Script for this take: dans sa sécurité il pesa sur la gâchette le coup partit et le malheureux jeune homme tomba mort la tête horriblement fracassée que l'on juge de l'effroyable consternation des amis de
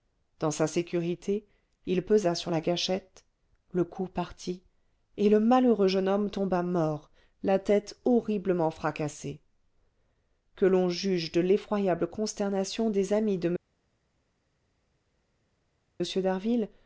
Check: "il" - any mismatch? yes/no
no